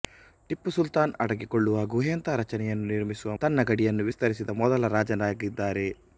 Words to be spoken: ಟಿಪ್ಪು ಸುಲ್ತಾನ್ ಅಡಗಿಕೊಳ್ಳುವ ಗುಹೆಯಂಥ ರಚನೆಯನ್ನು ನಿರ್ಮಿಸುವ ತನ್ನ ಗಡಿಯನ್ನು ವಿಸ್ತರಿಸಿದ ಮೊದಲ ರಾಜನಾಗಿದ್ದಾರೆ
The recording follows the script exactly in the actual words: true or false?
true